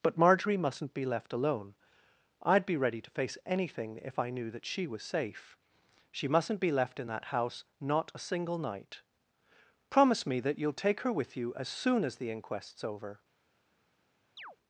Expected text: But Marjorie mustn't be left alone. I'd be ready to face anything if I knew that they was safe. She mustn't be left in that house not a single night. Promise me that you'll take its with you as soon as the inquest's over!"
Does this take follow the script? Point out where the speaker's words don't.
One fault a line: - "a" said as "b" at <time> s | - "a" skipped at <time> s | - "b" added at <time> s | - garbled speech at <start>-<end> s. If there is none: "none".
- "they" said as "she" at 4.7 s
- "its" said as "her" at 11.0 s